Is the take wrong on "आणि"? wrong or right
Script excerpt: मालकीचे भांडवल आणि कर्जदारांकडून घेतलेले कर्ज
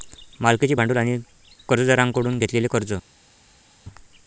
right